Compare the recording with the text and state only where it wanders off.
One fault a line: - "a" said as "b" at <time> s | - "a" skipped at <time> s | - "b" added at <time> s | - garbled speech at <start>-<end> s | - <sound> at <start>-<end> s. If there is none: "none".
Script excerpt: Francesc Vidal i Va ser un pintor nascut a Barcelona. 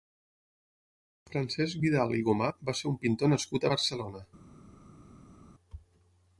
- "Gomà" added at 2.3 s